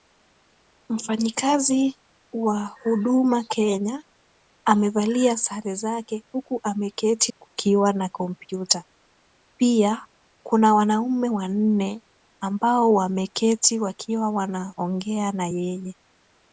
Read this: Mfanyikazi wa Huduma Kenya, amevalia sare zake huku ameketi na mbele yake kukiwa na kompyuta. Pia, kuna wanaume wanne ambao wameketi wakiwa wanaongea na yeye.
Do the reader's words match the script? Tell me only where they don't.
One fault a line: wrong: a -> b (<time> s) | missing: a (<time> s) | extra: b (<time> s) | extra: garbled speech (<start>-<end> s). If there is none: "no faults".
missing: na mbele yake (7.3 s)